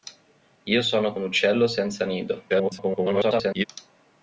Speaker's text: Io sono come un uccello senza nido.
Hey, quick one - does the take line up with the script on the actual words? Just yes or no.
no